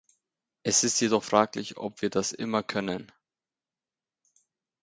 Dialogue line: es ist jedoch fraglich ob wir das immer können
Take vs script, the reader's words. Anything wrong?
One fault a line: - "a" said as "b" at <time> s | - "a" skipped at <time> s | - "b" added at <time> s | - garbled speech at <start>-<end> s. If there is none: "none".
none